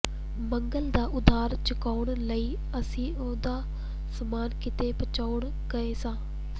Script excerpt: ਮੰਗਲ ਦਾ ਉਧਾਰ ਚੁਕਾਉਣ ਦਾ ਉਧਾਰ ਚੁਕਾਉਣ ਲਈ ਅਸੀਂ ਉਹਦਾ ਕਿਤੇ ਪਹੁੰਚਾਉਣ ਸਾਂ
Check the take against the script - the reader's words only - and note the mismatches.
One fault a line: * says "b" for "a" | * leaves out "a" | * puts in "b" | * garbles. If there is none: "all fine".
* leaves out "ਦਾ ਉਧਾਰ ਚੁਕਾਉਣ"
* puts in "ਸਮਾਨ"
* puts in "ਗਏ"